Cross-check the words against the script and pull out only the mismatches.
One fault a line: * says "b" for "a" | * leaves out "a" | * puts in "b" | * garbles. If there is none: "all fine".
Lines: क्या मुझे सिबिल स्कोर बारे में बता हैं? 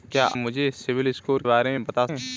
all fine